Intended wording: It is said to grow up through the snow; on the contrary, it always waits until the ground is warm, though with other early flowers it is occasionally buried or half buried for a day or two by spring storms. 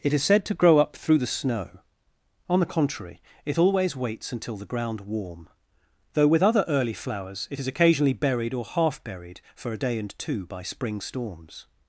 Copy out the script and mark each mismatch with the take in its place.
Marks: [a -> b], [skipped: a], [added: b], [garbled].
It is said to grow up through the snow; on the contrary, it always waits until the ground [skipped: is] warm, though with other early flowers it is occasionally buried or half buried for a day [or -> and] two by spring storms.